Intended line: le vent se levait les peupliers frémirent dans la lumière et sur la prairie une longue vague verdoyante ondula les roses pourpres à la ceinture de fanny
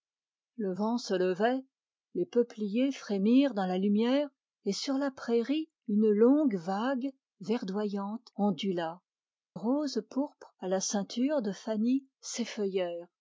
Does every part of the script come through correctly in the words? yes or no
no